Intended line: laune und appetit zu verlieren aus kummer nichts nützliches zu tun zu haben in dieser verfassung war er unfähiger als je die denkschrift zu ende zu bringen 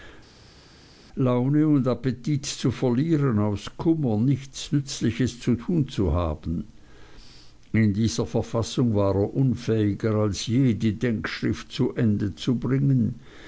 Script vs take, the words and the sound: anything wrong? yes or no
no